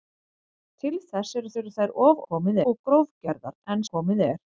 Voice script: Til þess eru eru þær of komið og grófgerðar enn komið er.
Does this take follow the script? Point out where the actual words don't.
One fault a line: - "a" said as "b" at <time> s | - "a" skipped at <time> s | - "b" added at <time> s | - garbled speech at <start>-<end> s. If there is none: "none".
none